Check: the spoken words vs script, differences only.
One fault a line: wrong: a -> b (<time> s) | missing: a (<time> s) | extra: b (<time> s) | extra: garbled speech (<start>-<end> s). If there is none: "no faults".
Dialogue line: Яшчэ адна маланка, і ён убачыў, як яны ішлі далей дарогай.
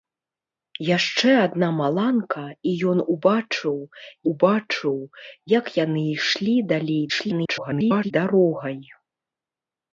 extra: убачыў (4.3 s)
extra: garbled speech (7.1-8.1 s)